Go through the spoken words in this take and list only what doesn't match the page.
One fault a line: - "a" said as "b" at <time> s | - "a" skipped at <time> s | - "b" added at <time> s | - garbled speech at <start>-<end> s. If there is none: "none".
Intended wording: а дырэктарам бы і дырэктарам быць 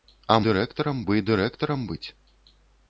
none